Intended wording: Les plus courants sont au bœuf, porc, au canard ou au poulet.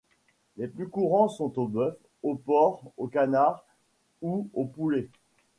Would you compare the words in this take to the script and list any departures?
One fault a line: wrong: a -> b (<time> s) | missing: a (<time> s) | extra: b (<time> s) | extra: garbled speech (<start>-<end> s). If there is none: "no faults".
extra: au (2.2 s)